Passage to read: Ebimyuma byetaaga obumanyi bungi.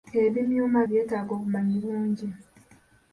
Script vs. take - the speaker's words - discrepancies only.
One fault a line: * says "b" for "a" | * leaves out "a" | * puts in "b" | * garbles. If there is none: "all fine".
all fine